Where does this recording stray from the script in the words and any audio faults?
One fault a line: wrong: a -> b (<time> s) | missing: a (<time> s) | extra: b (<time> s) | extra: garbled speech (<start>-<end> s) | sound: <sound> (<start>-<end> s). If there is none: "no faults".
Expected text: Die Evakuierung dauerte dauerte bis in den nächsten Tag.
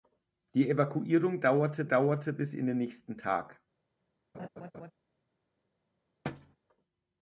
sound: laugh (4.3-4.9 s)
sound: thud (6.2-6.6 s)